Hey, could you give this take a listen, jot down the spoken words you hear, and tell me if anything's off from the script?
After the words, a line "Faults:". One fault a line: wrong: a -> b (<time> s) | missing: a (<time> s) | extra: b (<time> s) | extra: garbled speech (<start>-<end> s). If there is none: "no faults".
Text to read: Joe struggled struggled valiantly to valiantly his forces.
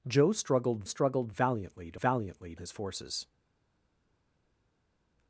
Joe struggled struggled valiantly to valiantly his forces.
Faults:
no faults